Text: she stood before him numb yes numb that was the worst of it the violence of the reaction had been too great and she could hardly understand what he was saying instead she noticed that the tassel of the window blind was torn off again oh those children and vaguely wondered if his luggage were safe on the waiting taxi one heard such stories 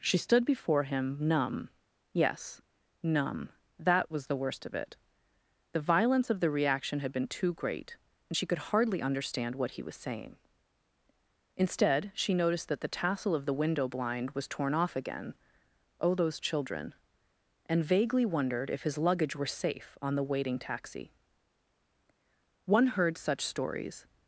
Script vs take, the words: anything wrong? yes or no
no